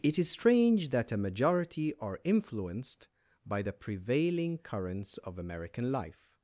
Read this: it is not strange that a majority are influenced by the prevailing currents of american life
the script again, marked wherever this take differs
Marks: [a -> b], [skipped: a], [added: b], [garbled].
it is [skipped: not] strange that a majority are influenced by the prevailing currents of american life